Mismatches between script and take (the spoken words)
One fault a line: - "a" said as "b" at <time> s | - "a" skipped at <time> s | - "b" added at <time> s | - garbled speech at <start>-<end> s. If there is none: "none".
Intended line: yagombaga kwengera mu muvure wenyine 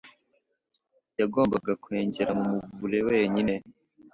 none